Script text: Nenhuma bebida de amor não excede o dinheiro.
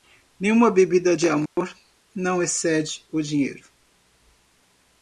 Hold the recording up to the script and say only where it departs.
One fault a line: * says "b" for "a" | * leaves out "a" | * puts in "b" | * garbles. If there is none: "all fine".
all fine